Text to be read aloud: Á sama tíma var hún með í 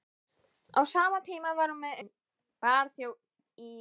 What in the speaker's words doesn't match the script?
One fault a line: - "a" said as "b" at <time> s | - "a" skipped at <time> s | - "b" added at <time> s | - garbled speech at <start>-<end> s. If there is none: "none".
none